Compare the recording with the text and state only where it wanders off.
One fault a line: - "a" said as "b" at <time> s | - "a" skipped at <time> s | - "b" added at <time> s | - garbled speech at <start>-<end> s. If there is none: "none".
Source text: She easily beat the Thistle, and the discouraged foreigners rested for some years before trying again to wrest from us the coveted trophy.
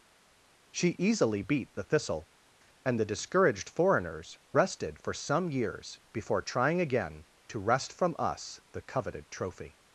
none